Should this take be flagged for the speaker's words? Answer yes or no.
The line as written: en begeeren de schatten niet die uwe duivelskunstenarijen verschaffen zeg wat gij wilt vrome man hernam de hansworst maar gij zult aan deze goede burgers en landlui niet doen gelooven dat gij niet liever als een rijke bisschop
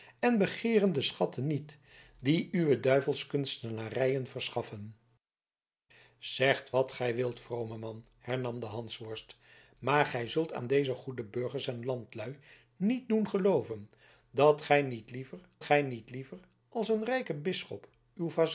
yes